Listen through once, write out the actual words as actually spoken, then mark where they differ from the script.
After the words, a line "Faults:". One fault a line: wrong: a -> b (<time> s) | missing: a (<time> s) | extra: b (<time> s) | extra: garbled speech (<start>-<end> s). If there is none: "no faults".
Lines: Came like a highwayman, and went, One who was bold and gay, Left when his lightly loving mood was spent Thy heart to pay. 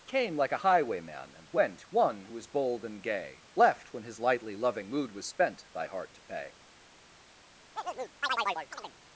Came like a highwayman, and went, One who was bold and gay, Left when his lightly loving mood was spent Thy heart to pay.
Faults:
no faults